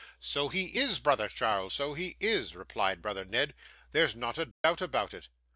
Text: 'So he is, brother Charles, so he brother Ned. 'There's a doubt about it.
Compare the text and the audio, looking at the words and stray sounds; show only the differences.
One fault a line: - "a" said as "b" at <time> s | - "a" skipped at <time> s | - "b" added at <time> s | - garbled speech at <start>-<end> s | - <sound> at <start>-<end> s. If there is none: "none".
- "is replied" added at 2.2 s
- "not" added at 4.2 s
- dropout at 4.5-4.6 s